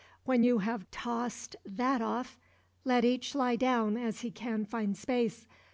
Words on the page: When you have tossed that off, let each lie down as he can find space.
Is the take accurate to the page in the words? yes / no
yes